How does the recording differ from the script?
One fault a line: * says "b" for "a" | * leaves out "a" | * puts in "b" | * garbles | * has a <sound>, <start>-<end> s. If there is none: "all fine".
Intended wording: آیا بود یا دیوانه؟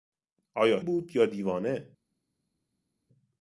all fine